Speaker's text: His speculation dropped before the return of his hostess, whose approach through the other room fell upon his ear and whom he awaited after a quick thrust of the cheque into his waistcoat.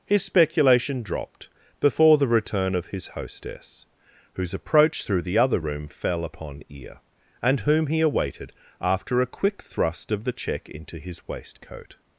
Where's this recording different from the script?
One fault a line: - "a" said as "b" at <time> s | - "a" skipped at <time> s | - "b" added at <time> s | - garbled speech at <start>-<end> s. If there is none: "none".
- "his" skipped at 6.6 s